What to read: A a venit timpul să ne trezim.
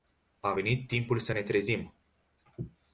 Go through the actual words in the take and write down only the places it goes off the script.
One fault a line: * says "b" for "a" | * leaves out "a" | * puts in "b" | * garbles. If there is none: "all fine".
* leaves out "a"